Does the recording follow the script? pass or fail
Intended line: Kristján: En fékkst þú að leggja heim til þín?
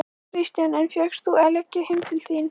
pass